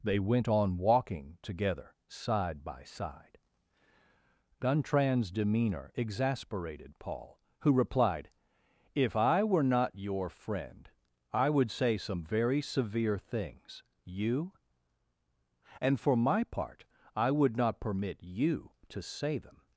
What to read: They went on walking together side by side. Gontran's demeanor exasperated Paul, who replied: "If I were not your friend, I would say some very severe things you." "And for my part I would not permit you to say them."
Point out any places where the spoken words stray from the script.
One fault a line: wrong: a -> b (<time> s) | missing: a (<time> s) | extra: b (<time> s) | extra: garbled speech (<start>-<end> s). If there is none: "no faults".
no faults